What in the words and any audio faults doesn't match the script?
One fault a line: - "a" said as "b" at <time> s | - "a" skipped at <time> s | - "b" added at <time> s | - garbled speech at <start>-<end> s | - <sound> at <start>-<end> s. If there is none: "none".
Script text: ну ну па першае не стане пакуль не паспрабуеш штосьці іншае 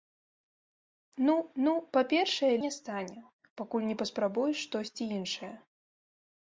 none